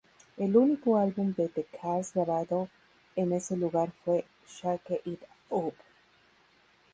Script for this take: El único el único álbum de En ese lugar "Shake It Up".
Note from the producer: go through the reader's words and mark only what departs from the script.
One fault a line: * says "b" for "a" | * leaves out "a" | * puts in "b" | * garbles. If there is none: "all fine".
* says "álbum de The Cars grabado" for "el único álbum de"
* puts in "fue"